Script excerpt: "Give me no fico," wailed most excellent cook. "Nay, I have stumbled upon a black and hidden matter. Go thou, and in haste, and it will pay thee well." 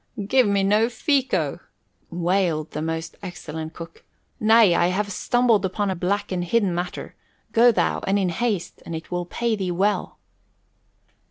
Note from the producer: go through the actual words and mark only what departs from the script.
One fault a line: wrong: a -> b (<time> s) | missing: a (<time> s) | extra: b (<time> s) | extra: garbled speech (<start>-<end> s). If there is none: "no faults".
extra: the (2.7 s)